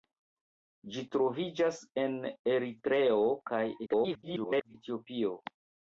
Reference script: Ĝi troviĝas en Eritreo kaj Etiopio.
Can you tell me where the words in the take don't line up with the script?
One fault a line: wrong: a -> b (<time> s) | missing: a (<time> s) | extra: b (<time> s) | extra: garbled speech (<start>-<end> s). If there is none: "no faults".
extra: garbled speech (3.9-4.7 s)